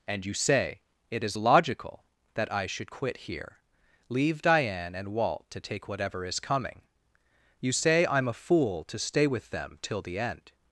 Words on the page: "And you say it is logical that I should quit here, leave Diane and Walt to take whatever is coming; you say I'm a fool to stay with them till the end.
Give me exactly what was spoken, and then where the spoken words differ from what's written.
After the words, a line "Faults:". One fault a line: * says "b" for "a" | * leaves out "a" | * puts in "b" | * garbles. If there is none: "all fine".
"And you say it is logical that I should quit here, leave Diane and Walt to take whatever is coming; you say I'm a fool to stay with them till the end.
Faults:
all fine